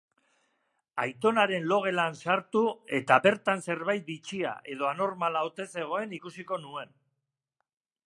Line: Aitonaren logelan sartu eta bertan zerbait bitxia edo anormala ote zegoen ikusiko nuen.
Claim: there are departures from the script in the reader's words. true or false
false